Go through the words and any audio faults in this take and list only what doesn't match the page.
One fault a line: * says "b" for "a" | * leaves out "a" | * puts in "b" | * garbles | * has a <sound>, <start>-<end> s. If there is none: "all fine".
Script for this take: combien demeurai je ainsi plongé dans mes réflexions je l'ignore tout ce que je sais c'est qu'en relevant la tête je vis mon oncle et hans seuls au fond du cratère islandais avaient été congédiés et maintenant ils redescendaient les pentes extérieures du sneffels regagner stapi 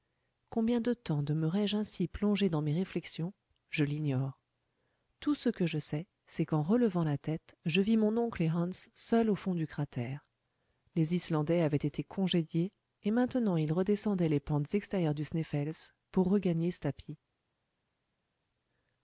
* puts in "de temps"
* puts in "les"
* puts in "pour"